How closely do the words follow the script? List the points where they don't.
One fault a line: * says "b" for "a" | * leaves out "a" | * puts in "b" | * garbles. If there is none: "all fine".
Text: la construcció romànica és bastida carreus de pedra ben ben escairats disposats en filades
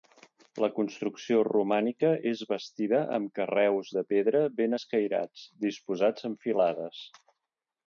* puts in "amb"
* leaves out "ben"